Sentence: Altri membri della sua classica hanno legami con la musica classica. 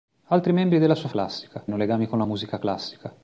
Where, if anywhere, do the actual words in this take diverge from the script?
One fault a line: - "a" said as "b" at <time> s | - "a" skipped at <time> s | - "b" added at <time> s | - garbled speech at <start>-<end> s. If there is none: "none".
none